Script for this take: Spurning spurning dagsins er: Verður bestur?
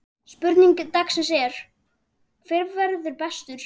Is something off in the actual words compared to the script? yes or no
yes